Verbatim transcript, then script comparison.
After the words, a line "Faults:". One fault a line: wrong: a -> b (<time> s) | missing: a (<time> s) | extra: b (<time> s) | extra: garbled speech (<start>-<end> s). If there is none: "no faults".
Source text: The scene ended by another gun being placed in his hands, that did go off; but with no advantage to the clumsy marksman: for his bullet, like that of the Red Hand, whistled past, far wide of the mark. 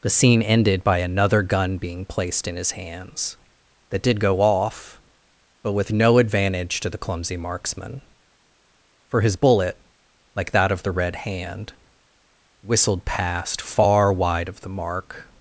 The scene ended by another gun being placed in his hands, that did go off; but with no advantage to the clumsy marksman: for his bullet, like that of the Red Hand, whistled past, far wide of the mark.
Faults:
no faults